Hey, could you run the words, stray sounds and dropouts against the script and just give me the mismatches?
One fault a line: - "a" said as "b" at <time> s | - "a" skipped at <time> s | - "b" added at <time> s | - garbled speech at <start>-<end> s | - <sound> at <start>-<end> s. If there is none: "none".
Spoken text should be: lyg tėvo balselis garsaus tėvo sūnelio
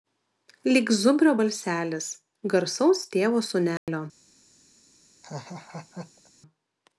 - "tėvo" said as "zubrio" at 1.0 s
- dropout at 3.8-3.9 s
- laugh at 5.2-6.3 s